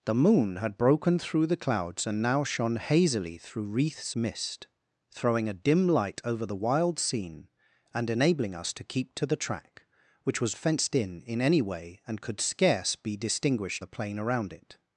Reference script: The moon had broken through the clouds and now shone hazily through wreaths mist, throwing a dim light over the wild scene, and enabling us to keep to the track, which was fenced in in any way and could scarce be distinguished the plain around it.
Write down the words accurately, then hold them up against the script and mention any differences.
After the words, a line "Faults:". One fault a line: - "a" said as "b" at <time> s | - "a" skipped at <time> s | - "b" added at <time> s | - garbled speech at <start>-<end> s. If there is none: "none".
The moon had broken through the clouds and now shone hazily through wreaths mist, throwing a dim light over the wild scene, and enabling us to keep to the track, which was fenced in in any way and could scarce be distinguished the plain around it.
Faults:
none